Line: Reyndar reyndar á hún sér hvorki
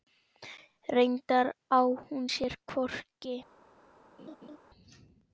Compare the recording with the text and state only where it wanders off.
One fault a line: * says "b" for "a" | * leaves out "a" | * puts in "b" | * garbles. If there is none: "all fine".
* leaves out "reyndar"